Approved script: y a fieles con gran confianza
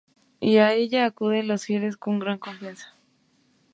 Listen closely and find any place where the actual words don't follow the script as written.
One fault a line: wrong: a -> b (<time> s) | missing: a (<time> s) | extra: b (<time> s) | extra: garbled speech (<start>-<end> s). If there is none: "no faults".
extra: ella acuden los (0.7 s)